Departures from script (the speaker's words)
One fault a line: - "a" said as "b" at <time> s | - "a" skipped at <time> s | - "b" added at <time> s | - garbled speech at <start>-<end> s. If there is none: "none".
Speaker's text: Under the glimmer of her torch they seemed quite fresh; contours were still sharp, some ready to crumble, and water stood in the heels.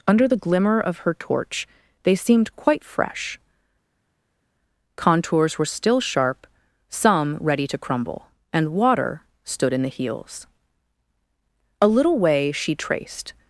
- "A little way she traced" added at 11.8 s